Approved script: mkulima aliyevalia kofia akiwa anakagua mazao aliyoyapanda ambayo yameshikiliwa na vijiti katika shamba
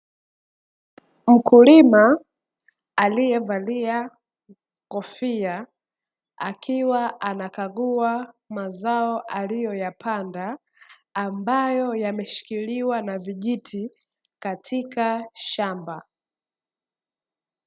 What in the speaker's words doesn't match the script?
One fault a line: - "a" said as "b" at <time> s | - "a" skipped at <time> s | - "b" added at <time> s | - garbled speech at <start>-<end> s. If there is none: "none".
none